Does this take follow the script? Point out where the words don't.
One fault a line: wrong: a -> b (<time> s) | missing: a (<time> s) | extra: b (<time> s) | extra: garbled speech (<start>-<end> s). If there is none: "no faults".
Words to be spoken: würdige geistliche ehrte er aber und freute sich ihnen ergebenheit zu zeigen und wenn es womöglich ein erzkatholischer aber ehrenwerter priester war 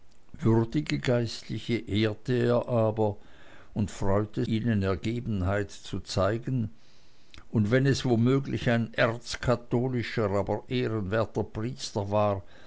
missing: sich (4.5 s)